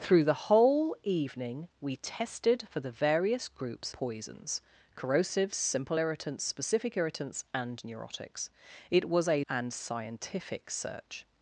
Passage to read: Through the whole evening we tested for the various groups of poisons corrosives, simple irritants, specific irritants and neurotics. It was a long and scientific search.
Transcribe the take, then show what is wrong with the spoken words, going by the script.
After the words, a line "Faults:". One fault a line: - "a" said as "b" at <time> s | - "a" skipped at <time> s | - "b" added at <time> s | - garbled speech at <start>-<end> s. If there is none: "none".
Through the whole evening we tested for the various groups poisons corrosives, simple irritants, specific irritants and neurotics. It was a and scientific search.
Faults:
- "of" skipped at 3.9 s
- "long" skipped at 9.4 s